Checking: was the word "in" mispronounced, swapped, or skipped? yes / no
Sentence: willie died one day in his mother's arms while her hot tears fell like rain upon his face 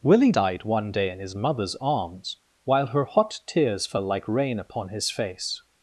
no